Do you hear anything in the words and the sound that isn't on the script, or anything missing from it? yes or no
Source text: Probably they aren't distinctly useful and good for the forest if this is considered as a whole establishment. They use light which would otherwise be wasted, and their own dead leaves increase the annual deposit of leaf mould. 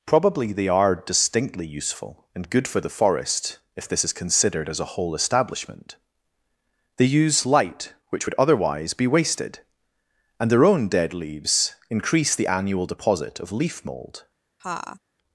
yes